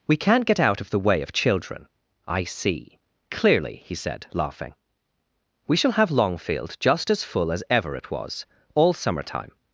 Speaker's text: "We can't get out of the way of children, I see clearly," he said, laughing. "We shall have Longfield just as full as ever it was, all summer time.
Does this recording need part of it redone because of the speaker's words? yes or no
no